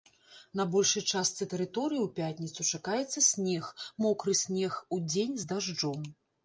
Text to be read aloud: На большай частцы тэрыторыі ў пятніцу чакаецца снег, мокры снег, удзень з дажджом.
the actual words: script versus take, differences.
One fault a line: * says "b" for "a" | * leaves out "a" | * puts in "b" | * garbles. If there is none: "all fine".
all fine